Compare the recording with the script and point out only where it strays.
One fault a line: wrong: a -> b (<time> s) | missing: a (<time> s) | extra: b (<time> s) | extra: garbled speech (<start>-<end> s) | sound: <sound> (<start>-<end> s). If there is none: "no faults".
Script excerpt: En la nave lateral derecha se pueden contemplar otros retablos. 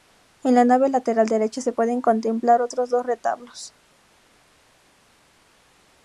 extra: dos (2.9 s)